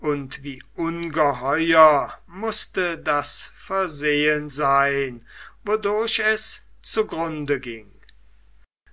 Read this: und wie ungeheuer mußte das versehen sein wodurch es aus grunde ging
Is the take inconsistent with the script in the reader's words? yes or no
yes